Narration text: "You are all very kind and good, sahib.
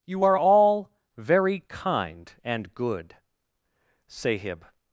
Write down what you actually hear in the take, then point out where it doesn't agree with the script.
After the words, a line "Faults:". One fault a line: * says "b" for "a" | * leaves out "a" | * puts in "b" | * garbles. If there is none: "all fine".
"You are all very kind and good, sahib.
Faults:
all fine